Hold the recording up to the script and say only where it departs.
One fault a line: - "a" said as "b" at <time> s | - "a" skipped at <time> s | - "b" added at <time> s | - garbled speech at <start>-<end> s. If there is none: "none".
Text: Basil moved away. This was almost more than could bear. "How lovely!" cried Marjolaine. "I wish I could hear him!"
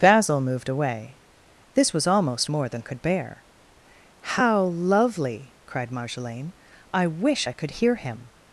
none